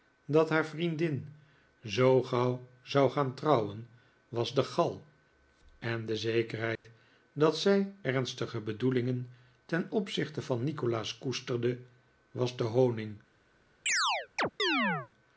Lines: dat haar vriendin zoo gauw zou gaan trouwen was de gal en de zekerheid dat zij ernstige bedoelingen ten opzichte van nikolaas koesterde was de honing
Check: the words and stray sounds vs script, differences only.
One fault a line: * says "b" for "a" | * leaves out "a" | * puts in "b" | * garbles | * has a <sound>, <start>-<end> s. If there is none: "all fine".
* has a dropout, 6.8-6.8 s
* has a chirp, 13.9-15.1 s